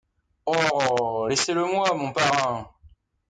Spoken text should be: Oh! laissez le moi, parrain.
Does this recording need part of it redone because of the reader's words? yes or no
yes